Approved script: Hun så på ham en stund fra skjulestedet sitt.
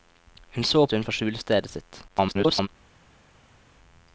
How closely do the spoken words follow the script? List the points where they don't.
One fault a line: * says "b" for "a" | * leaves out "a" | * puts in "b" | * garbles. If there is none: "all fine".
* leaves out "på ham en"
* garbles